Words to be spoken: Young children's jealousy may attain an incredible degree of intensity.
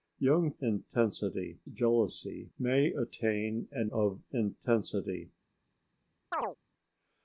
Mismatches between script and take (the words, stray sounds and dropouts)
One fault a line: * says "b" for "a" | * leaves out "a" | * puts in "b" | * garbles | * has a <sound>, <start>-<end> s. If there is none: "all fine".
* says "intensity" for "children's"
* leaves out "incredible degree"
* has a chirp, 6.3-6.6 s